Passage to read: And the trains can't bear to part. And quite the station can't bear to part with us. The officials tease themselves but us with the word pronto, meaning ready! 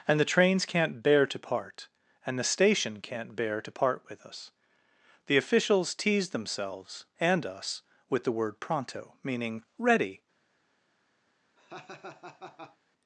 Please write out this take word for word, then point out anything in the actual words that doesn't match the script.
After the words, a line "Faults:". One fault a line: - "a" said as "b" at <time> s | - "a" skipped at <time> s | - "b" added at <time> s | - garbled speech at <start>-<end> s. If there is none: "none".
And the trains can't bear to part. And the station can't bear to part with us. The officials tease themselves and us with the word pronto, meaning ready!
Faults:
- "quite" skipped at 2.4 s
- "but" said as "and" at 7.2 s